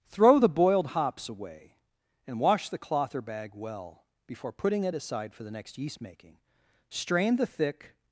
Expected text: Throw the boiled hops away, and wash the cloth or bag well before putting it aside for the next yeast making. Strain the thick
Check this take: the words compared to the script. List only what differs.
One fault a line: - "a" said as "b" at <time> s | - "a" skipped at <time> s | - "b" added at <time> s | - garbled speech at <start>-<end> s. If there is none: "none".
none